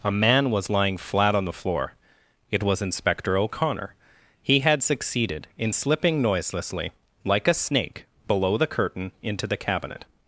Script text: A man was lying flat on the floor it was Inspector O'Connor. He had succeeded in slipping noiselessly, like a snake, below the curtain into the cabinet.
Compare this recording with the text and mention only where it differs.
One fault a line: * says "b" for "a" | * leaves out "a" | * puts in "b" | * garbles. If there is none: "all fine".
all fine